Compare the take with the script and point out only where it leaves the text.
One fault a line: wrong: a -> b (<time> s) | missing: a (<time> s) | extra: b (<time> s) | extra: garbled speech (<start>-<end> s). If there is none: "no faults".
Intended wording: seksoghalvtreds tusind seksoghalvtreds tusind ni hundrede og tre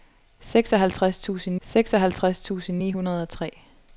no faults